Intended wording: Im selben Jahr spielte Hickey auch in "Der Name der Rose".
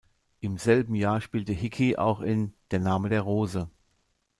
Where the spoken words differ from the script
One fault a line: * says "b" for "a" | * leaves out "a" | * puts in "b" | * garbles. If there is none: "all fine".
all fine